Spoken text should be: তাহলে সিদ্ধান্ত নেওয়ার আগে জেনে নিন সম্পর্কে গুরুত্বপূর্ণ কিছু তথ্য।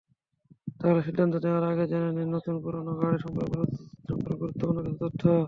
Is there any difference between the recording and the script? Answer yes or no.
yes